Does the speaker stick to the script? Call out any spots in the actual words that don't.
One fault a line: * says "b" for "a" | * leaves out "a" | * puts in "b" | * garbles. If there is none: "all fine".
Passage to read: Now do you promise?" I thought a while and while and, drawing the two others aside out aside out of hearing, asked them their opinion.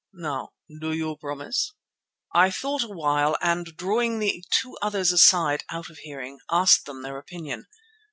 * leaves out "while and"
* leaves out "aside out"